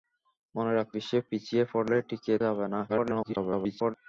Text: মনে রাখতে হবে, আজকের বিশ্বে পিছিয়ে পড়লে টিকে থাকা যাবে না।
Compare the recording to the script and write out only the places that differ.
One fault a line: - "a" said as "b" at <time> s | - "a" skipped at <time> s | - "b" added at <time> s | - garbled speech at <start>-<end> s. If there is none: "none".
- "হবে আজকের" skipped at 0.9 s
- "থাকা" skipped at 2.3 s
- garbled speech at 2.9-3.9 s